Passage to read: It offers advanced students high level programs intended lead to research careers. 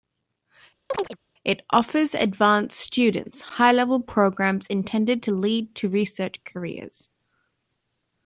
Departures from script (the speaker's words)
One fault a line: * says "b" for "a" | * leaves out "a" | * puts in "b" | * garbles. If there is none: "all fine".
* puts in "to"